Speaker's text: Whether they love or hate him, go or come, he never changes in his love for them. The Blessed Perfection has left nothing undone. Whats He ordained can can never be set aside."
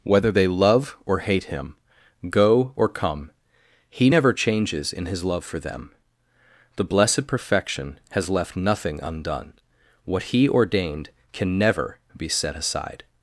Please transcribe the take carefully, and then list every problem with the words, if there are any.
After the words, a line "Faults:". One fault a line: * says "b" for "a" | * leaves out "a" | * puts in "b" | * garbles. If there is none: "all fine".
Whether they love or hate him, go or come, he never changes in his love for them. The Blessed Perfection has left nothing undone. What He ordained can never be set aside."
Faults:
* says "What" for "Whats"
* leaves out "can"